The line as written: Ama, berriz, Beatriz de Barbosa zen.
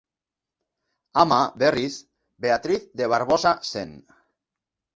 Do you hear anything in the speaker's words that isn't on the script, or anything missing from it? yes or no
no